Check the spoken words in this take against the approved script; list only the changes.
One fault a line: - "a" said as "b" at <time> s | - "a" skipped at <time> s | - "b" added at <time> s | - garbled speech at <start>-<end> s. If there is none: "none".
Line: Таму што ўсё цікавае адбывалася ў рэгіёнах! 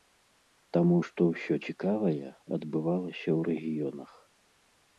none